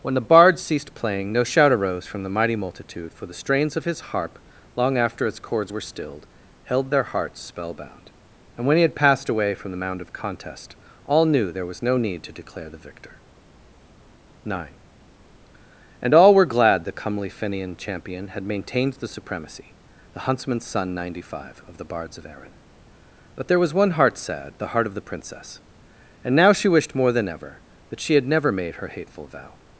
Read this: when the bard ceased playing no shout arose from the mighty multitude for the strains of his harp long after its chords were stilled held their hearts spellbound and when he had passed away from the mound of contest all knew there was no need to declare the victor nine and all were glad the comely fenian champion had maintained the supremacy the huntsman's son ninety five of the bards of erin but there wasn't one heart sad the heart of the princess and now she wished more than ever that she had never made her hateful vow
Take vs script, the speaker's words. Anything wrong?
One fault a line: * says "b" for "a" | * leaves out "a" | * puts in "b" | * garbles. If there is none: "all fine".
* says "was" for "wasn't"